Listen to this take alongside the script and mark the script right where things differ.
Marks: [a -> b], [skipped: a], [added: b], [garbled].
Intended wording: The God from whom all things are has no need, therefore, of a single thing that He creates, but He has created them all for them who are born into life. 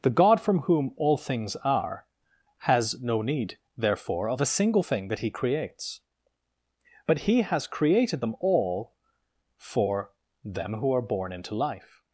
The God from whom all things are has no need, therefore, of a single thing that He creates, but He has created them all for them who are born into life.